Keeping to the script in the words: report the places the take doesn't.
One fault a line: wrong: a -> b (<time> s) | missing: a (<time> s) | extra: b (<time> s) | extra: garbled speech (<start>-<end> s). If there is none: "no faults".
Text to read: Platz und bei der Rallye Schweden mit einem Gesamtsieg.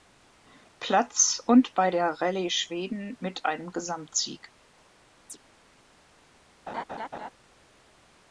no faults